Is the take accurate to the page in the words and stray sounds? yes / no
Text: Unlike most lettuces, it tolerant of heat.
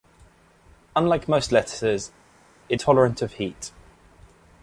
yes